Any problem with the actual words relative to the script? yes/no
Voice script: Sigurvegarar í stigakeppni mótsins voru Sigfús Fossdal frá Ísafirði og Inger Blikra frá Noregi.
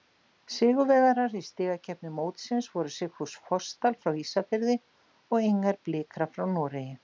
no